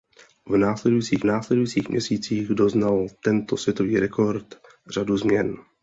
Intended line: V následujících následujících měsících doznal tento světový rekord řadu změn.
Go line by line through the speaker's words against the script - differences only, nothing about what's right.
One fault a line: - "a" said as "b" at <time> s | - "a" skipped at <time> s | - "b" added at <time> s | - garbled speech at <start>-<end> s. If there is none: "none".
none